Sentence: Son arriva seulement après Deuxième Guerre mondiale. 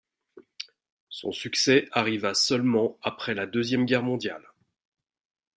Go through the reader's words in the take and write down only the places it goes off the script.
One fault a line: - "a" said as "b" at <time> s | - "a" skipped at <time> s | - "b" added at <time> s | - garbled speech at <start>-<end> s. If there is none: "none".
- "succès" added at 1.3 s
- "la" added at 3.3 s